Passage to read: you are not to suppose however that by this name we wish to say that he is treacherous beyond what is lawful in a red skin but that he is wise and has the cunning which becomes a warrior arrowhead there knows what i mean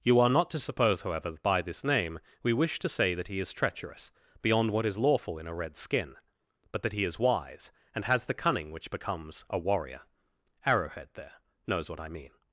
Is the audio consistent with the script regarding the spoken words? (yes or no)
yes